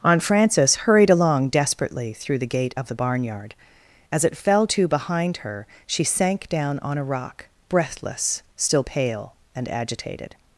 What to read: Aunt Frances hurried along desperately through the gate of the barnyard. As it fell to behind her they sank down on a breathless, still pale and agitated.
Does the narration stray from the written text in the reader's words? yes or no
yes